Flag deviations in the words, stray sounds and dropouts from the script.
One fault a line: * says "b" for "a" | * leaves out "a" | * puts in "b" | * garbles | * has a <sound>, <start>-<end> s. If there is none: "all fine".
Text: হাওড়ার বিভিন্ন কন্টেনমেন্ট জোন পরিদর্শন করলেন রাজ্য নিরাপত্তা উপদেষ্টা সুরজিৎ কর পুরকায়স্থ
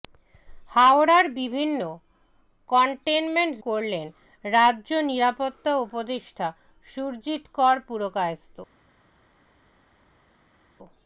* leaves out "জোন পরিদর্শন"